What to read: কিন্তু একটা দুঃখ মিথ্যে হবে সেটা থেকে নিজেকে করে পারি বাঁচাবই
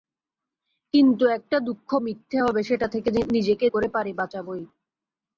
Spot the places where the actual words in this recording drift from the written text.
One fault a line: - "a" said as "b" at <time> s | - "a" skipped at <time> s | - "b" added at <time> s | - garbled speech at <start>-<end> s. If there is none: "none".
none